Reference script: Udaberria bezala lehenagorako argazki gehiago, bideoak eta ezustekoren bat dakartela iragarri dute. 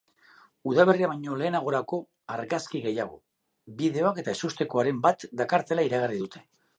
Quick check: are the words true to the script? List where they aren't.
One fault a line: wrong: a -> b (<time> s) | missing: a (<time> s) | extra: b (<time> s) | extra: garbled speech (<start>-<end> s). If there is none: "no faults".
wrong: bezala -> baino (1.1 s)